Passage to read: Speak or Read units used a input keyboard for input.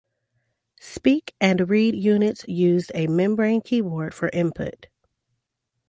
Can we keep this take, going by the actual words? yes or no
no